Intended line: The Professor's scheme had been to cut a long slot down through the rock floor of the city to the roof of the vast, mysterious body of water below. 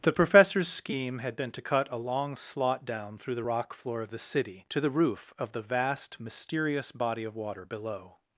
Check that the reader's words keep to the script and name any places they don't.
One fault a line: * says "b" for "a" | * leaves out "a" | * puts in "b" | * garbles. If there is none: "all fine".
all fine